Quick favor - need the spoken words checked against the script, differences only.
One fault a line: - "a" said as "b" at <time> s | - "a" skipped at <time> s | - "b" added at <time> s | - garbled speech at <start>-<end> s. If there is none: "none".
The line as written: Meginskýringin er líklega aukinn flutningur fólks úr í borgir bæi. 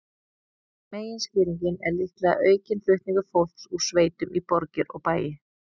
- "sveitum" added at 3.9 s
- "og" added at 5.0 s